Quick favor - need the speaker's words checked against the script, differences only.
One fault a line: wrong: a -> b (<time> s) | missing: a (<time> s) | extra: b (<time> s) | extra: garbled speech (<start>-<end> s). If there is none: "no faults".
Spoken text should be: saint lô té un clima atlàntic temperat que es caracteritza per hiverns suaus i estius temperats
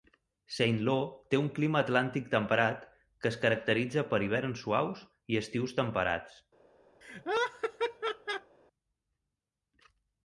no faults